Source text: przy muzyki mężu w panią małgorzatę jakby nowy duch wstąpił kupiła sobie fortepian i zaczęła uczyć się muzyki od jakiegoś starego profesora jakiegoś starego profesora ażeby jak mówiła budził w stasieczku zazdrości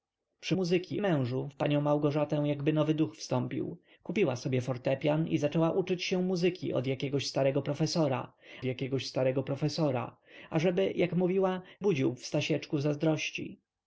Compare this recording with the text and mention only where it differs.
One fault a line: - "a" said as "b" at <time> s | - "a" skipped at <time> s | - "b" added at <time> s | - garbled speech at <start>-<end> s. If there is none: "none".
none